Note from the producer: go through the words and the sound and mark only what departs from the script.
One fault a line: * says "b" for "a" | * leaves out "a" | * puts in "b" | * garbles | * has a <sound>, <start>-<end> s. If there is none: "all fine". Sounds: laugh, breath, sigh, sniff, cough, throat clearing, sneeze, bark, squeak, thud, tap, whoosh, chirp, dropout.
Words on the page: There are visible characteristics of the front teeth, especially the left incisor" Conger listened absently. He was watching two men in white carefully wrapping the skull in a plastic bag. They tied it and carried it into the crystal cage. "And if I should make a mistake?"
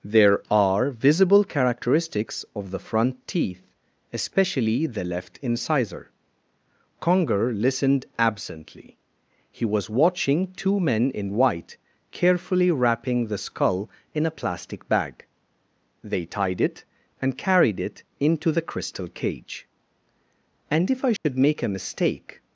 * has a dropout, 21.2-21.2 s